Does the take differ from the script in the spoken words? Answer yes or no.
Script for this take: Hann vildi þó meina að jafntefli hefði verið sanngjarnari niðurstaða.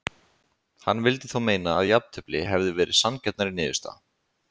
no